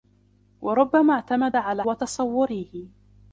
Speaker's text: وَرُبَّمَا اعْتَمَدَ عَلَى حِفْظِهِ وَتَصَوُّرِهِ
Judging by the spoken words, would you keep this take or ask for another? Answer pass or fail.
fail